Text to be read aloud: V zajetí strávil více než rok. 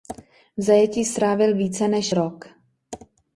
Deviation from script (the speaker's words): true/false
false